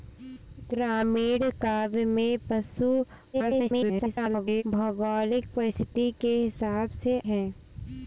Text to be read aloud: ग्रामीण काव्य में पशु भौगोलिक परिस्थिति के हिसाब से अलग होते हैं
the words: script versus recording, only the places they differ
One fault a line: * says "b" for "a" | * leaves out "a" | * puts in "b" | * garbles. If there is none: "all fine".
* garbles
* leaves out "अलग होते"